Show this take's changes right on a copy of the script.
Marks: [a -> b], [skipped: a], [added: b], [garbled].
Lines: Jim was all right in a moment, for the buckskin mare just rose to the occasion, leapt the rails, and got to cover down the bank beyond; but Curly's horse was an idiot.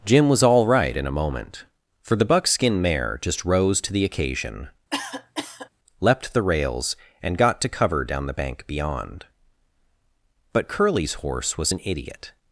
Jim was all right in a moment, for the buckskin mare just rose to the occasion, leapt the rails, and got to cover down the bank beyond; but Curly's horse was an idiot.